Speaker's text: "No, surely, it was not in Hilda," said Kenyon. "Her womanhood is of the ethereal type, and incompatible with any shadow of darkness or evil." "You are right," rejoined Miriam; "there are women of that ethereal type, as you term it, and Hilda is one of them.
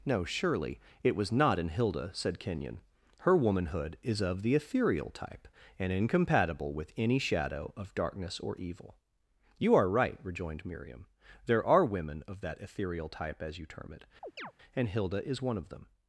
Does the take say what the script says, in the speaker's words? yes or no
yes